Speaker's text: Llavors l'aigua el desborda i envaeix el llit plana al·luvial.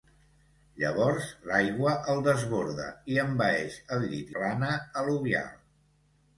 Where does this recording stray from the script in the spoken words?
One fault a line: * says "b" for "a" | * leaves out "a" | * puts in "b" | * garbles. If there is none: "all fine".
all fine